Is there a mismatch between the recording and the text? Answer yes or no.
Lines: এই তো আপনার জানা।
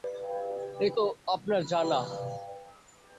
no